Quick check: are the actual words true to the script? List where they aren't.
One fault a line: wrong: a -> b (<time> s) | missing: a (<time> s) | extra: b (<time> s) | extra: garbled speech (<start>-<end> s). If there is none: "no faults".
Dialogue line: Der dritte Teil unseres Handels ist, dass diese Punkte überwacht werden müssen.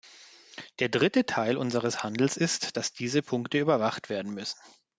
no faults